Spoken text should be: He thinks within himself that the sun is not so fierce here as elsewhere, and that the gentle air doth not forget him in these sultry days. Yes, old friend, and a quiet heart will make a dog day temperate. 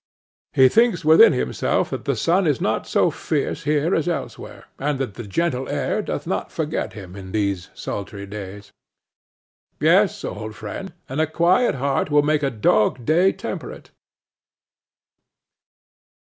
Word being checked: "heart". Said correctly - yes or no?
yes